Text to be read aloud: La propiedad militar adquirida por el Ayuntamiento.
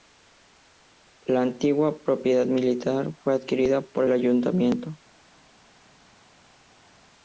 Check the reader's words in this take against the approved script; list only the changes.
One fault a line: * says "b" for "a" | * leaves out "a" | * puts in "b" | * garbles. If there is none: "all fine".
* puts in "antigua"
* puts in "fue"